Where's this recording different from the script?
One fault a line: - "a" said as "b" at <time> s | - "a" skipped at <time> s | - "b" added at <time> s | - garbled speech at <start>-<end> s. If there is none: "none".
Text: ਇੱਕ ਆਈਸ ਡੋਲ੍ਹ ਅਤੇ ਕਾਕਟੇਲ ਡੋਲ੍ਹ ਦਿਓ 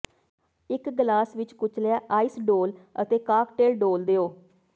- "ਗਲਾਸ ਵਿੱਚ ਕੁਚਲਿਆ" added at 0.9 s